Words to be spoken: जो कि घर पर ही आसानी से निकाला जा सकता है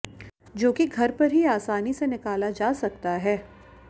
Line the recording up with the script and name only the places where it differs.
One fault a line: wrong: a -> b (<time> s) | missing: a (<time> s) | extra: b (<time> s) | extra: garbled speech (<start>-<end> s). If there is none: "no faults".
no faults